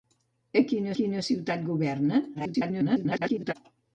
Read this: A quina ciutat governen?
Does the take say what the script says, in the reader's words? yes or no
no